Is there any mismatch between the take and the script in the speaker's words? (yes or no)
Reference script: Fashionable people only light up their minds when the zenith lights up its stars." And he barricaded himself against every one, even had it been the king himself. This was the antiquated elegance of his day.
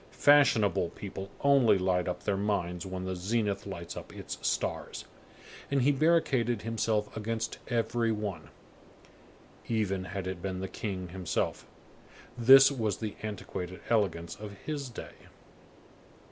no